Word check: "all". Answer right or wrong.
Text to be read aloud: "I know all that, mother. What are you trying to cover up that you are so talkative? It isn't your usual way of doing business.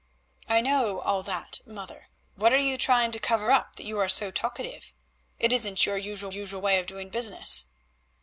right